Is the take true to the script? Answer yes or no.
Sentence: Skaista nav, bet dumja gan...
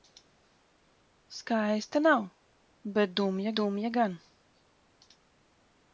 no